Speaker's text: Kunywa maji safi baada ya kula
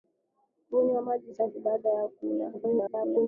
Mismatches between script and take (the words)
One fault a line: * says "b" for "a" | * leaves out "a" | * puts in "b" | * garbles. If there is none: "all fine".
* garbles